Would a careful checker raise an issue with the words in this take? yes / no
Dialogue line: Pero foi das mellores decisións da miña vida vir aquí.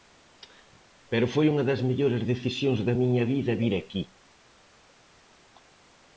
yes